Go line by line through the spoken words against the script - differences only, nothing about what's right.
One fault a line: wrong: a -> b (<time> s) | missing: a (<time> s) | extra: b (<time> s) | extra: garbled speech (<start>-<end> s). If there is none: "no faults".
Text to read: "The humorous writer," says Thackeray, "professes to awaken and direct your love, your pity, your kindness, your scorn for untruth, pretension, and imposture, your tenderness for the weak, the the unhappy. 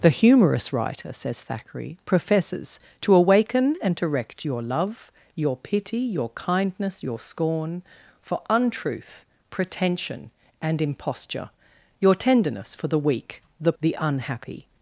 no faults